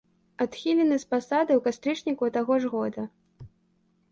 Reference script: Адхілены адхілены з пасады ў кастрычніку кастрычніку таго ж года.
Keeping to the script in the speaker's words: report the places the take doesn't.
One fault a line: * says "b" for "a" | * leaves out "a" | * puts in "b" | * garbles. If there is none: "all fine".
* leaves out "адхілены"
* leaves out "кастрычніку"